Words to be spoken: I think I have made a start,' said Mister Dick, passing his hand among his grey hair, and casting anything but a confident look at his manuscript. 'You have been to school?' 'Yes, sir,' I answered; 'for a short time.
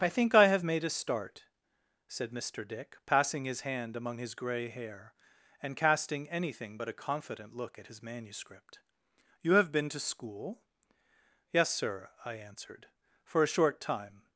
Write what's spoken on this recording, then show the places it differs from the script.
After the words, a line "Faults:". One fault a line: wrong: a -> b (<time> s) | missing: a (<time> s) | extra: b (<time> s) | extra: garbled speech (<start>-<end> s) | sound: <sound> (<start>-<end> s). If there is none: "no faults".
I think I have made a start,' said Mister Dick, passing his hand among his grey hair, and casting anything but a confident look at his manuscript. 'You have been to school?' 'Yes, sir,' I answered; 'for a short time.
Faults:
no faults